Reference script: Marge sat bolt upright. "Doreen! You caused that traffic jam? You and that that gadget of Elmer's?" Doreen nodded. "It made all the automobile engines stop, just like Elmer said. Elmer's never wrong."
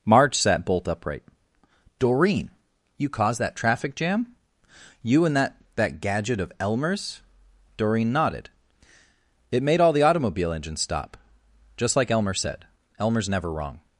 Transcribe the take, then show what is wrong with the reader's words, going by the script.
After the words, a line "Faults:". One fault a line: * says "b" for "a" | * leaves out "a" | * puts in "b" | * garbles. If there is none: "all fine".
Marge sat bolt upright. "Doreen! You caused that traffic jam? You and that that gadget of Elmer's?" Doreen nodded. "It made all the automobile engines stop, just like Elmer said. Elmer's never wrong."
Faults:
all fine